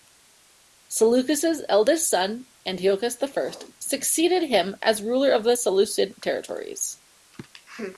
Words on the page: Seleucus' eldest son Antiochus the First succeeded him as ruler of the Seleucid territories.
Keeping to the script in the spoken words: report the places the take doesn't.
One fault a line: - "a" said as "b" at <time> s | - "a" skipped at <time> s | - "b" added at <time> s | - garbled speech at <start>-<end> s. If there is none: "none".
none